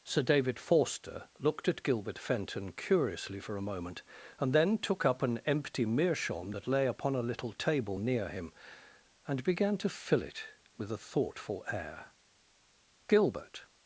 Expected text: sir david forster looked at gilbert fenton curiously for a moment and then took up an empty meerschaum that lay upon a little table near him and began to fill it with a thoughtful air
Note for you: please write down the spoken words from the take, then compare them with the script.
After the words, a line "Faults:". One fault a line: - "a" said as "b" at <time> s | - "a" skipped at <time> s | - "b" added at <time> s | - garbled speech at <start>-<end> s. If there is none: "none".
sir david forster looked at gilbert fenton curiously for a moment and then took up an empty meerschaum that lay upon a little table near him and began to fill it with a thoughtful air gilbert
Faults:
- "gilbert" added at 13.1 s